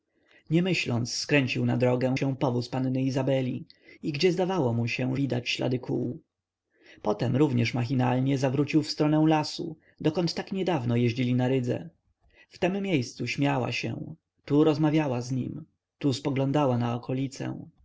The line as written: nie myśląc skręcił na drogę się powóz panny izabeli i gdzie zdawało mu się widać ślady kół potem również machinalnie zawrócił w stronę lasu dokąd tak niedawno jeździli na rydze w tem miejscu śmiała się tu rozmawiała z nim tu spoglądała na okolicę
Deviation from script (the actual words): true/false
false